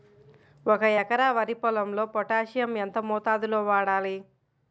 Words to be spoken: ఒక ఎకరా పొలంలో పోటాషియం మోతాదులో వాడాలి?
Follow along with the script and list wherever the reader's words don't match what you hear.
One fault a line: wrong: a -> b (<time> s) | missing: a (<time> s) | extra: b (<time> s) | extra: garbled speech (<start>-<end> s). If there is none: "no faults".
extra: వరి (1.3 s)
extra: ఎంత (2.8 s)